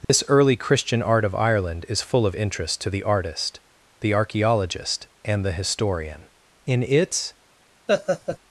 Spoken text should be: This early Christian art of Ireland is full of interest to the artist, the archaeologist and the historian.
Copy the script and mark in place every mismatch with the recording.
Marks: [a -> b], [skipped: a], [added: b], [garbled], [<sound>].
This [dropout] early Christian art of Ireland is full of interest to the artist, the archaeologist and the historian. [added: In its] [laugh]